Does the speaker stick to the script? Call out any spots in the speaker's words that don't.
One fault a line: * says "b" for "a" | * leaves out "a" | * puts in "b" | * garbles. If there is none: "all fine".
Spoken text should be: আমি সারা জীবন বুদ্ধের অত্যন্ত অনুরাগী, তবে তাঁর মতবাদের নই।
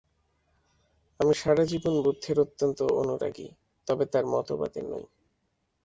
all fine